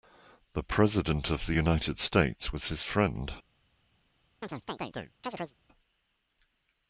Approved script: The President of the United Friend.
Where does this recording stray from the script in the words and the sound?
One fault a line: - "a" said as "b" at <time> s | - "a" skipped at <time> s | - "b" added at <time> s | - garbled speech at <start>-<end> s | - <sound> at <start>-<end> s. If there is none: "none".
- "States was his" added at 2.0 s
- chirp at 4.4-5.5 s